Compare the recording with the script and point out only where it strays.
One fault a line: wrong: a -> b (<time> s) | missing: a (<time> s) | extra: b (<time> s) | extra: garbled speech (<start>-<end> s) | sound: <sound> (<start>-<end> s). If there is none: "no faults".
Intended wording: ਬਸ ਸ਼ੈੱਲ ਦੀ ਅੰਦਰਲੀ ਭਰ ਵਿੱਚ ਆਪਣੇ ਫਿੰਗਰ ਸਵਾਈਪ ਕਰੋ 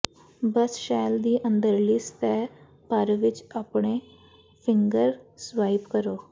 extra: ਸਤਿਹ (2.0 s)